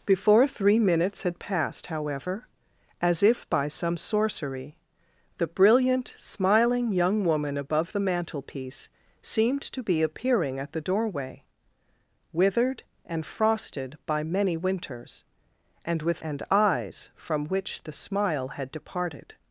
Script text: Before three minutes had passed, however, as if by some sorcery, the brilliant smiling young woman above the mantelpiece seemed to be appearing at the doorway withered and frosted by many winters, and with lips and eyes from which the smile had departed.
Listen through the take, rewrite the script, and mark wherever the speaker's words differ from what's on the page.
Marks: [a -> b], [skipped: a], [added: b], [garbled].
Before three minutes had passed, however, as if by some sorcery, the brilliant smiling young woman above the mantelpiece seemed to be appearing at the doorway withered and frosted by many winters, and with [skipped: lips] and eyes from which the smile had departed.